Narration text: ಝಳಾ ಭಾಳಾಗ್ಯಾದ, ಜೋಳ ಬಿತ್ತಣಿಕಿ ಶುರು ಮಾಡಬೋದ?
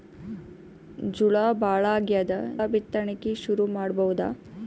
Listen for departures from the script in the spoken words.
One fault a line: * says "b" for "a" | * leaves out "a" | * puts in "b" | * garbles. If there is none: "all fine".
* leaves out "ಜೋಳ"